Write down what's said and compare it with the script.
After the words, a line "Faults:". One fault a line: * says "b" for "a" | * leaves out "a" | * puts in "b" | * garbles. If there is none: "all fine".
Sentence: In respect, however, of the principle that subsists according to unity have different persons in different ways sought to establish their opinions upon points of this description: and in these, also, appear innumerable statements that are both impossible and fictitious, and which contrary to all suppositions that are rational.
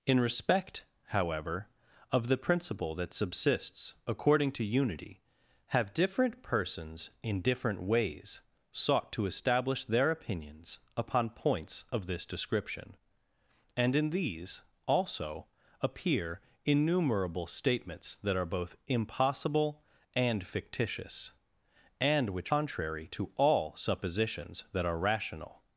In respect, however, of the principle that subsists according to unity have different persons in different ways sought to establish their opinions upon points of this description: and in these, also, appear innumerable statements that are both impossible and fictitious, and which contrary to all suppositions that are rational.
Faults:
all fine